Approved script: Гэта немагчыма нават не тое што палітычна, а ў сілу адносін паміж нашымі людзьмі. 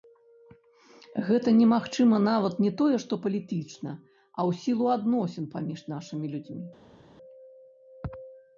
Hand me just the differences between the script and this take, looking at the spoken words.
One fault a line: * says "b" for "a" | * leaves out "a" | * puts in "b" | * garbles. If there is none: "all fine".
all fine